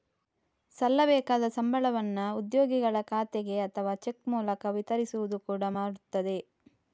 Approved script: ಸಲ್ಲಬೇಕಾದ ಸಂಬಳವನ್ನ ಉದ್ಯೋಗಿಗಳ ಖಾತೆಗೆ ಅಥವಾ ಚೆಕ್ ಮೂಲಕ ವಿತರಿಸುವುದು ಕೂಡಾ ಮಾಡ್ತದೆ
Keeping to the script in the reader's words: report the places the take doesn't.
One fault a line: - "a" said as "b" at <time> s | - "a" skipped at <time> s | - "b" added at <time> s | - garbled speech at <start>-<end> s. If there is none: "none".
none